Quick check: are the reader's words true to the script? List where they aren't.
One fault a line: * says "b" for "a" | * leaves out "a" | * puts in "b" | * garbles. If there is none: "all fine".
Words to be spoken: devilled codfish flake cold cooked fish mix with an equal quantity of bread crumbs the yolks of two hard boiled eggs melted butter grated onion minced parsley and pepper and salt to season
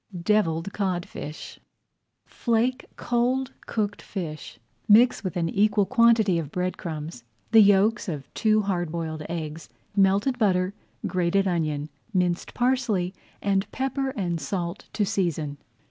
all fine